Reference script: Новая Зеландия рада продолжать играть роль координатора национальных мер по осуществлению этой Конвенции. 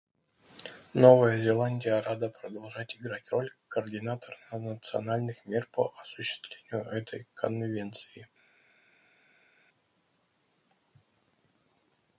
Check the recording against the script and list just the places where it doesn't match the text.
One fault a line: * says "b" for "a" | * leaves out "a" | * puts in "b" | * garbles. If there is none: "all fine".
all fine